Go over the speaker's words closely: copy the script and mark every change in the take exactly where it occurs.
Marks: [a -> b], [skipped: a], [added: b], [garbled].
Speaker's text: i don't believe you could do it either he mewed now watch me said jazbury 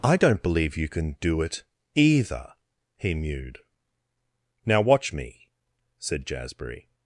i don't believe you [could -> can] do it either he mewed now watch me said jazbury